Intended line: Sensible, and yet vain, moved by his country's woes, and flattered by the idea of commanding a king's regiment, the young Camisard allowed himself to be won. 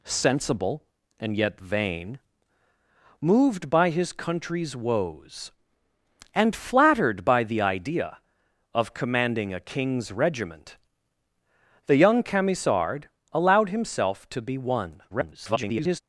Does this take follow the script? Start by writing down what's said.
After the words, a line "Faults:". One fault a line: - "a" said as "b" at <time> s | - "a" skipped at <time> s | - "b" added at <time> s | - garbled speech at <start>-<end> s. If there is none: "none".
Sensible, and yet vain, moved by his country's woes, and flattered by the idea of commanding a king's regiment, the young Camisard allowed himself to be won. [garbled]
Faults:
- garbled speech at 15.1-16.0 s